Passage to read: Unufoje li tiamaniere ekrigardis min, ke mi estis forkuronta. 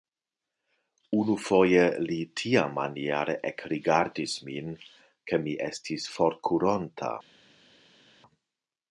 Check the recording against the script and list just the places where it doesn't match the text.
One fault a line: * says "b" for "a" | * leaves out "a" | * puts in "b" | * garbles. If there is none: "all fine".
all fine